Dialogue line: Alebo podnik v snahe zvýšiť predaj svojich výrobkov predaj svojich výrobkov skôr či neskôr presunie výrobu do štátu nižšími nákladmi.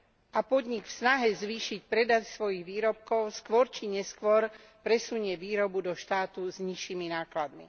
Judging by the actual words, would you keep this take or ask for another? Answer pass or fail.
fail